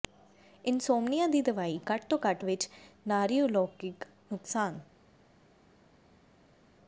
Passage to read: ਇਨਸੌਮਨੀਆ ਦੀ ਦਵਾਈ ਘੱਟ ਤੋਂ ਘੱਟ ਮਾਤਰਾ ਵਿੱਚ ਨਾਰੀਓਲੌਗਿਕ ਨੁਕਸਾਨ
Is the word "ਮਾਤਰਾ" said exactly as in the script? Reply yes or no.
no